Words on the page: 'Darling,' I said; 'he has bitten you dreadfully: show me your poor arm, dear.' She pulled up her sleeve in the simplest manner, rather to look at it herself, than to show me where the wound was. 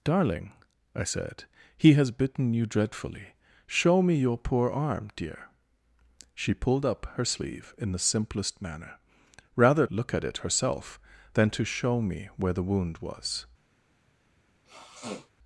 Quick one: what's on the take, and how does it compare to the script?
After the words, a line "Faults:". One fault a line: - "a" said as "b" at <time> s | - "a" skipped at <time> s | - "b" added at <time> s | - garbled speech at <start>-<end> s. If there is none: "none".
'Darling,' I said; 'he has bitten you dreadfully: show me your poor arm, dear.' She pulled up her sleeve in the simplest manner, rather look at it herself, than to show me where the wound was.
Faults:
- "to" skipped at 9.8 s